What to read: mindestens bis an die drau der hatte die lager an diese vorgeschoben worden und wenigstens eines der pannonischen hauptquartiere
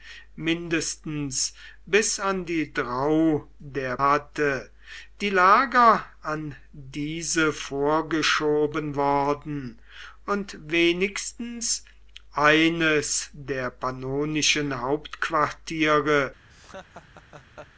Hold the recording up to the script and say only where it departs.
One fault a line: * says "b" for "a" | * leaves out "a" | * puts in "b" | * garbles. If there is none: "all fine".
all fine